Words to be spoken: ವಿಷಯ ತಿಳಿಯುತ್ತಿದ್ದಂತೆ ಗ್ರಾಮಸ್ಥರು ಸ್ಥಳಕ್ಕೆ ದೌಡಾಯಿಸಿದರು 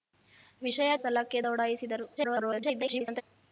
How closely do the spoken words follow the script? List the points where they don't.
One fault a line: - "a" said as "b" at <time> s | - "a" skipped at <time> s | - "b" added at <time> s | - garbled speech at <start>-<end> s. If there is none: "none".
- "ತಿಳಿಯುತ್ತಿದ್ದಂತೆ ಗ್ರಾಮಸ್ಥರು" skipped at 0.9 s
- garbled speech at 2.2-3.2 s